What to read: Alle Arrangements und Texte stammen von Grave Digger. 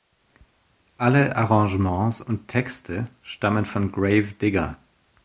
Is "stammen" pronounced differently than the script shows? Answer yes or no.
no